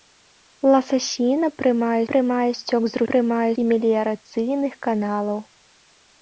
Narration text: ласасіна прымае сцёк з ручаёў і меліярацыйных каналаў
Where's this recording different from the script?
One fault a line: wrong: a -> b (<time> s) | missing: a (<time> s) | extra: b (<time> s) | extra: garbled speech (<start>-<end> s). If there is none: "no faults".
extra: прымае (2.1 s)
wrong: ручаёў -> прымае (3.1 s)